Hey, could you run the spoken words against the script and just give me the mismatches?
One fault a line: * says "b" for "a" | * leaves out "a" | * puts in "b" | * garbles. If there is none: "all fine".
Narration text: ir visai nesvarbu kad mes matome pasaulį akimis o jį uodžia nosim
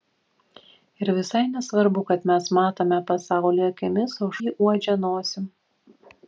all fine